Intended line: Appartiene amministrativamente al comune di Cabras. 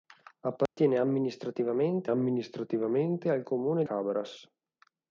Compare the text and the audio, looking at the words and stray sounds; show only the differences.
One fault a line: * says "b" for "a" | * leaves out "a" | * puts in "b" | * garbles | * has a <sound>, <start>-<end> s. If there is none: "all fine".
* has a dropout, 0.7-0.8 s
* puts in "amministrativamente"
* leaves out "di"